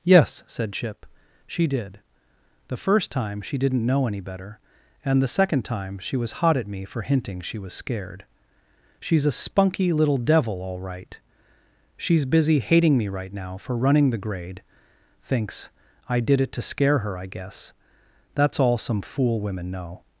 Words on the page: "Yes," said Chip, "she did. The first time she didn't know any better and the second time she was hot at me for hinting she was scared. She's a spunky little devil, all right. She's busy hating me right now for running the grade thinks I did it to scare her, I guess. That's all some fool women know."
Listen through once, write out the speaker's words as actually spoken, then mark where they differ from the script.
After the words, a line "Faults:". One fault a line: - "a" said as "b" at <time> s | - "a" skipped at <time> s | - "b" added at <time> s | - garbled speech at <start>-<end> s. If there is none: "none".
"Yes," said Chip, "she did. The first time she didn't know any better and the second time she was hot at me for hinting she was scared. She's a spunky little devil, all right. She's busy hating me right now for running the grade thinks I did it to scare her, I guess. That's all some fool women know."
Faults:
none